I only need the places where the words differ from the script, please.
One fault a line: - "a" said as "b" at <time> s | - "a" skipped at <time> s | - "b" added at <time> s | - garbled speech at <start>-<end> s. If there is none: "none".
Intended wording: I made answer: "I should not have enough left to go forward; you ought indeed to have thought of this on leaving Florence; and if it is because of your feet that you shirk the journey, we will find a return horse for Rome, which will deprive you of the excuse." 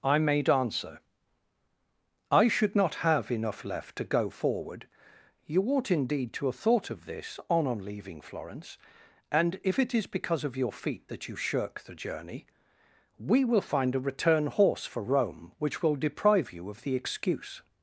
- "on" added at 7.7 s